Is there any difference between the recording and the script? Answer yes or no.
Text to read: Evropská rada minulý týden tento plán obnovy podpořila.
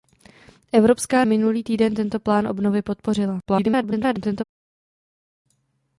yes